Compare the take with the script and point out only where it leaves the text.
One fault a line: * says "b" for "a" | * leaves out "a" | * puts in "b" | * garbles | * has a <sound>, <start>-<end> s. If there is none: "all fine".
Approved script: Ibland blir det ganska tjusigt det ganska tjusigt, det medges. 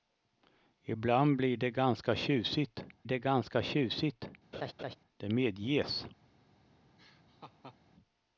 * has a laugh, 4.5-5.0 s
* has a laugh, 7.0-7.8 s